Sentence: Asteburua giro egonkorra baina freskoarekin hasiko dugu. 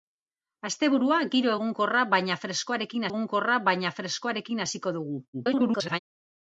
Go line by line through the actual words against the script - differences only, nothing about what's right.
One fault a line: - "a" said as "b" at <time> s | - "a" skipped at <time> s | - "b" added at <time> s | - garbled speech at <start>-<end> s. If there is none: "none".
- "egonkorra baina freskoarekin" added at 3.1 s
- garbled speech at 5.3-6.0 s